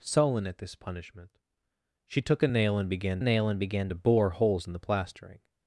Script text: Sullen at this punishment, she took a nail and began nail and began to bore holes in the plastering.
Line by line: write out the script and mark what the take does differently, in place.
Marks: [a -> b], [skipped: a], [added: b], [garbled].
Sullen at this punishment, she took a nail and began nail and began to bore holes in the plastering.